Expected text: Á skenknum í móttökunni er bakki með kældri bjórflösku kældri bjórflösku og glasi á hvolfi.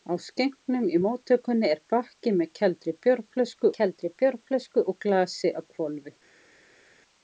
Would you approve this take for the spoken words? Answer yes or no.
yes